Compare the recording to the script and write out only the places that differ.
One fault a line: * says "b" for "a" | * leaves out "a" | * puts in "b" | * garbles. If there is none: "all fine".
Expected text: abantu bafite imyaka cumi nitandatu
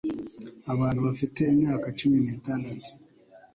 all fine